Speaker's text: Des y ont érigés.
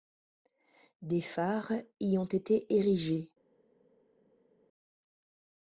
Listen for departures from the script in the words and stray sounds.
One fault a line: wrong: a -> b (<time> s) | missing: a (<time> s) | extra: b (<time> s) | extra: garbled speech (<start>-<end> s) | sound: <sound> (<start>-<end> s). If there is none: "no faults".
extra: phares (1.2 s)
extra: été (2.2 s)